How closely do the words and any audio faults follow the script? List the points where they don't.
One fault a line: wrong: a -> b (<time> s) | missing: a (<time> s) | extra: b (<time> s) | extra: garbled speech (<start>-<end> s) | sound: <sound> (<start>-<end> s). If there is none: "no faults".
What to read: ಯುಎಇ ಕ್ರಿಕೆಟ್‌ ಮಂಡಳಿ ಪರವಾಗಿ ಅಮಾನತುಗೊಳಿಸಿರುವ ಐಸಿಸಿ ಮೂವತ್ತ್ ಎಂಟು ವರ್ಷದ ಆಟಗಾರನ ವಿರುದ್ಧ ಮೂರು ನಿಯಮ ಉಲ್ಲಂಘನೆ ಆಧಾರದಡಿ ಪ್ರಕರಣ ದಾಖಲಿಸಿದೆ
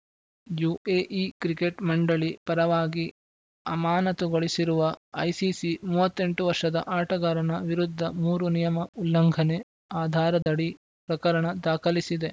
sound: dropout (10.4-10.5 s)